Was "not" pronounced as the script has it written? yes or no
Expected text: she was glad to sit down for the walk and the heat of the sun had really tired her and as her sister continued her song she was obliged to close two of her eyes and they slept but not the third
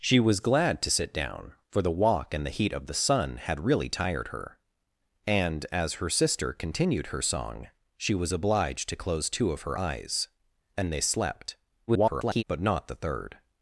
yes